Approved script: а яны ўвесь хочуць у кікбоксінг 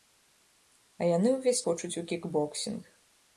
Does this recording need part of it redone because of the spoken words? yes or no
no